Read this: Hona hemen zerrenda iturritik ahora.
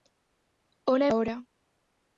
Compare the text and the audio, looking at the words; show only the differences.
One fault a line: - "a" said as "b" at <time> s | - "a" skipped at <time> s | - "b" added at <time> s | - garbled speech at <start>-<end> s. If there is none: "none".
- "hemen zerrenda iturritik" skipped at 1.1 s